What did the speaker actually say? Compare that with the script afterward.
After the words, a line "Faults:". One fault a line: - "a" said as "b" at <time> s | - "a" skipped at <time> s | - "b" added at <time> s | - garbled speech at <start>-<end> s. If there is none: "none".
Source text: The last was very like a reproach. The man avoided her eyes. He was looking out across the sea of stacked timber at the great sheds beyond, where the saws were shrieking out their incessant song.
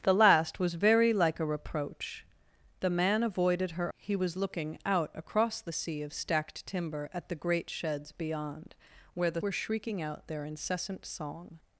The last was very like a reproach. The man avoided her. He was looking out across the sea of stacked timber at the great sheds beyond, where the were shrieking out their incessant song.
Faults:
- "eyes" skipped at 3.9 s
- "saws" skipped at 9.4 s